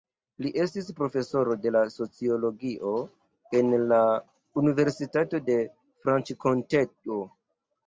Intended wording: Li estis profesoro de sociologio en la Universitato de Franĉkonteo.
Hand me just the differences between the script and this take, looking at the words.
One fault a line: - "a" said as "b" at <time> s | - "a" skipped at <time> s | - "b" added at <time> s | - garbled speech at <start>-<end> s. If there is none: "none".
none